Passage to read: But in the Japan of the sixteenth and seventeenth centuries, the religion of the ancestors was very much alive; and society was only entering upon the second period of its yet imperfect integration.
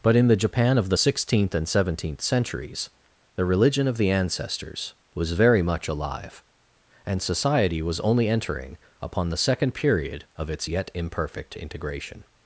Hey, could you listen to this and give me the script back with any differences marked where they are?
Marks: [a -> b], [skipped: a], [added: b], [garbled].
But in the Japan of the sixteenth and seventeenth centuries, the religion of the ancestors was very much alive; and society was only entering upon the second period of its yet imperfect integration.